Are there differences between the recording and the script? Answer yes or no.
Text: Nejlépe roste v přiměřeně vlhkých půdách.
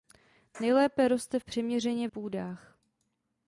yes